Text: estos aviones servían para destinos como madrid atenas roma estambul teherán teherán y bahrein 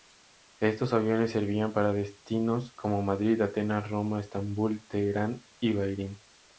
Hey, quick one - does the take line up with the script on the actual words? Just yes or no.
no